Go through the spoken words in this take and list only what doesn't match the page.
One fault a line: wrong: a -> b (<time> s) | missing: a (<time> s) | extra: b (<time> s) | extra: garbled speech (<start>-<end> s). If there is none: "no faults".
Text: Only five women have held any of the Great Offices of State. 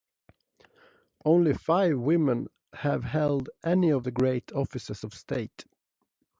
no faults